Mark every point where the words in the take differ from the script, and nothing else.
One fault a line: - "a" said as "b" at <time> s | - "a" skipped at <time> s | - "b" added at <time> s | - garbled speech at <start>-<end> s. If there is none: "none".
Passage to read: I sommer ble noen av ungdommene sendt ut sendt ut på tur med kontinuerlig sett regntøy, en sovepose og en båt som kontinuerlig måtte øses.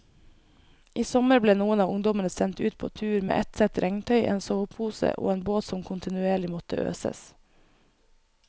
- "sendt ut" skipped at 2.8 s
- "kontinuerlig" said as "ett" at 3.4 s